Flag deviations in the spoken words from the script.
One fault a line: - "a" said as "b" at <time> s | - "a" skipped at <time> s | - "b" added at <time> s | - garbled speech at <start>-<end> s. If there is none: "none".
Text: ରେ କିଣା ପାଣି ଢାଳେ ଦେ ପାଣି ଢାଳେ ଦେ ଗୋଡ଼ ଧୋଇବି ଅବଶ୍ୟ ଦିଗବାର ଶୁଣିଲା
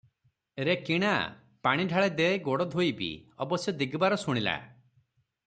- "ପାଣି ଢାଳେ ଦେ" skipped at 2.3 s